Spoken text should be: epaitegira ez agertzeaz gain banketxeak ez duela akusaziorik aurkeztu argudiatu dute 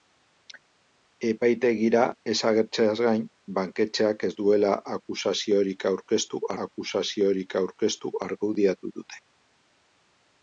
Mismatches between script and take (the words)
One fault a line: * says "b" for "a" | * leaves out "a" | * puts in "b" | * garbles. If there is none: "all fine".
* puts in "akusaziorik aurkeztu"